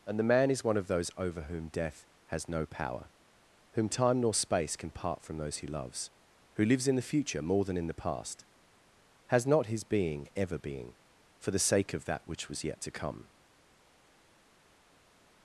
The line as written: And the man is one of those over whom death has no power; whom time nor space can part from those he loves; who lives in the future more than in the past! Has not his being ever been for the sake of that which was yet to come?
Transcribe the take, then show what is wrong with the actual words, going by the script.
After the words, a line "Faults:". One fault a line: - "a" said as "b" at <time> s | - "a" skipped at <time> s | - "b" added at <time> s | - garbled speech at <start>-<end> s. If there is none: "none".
And the man is one of those over whom death has no power; whom time nor space can part from those he loves; who lives in the future more than in the past! Has not his being ever being for the sake of that which was yet to come?
Faults:
- "been" said as "being" at 10.6 s